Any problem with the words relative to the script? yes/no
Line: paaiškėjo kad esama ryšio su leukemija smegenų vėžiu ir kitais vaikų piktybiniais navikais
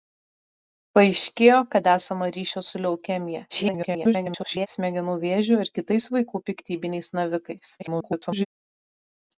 yes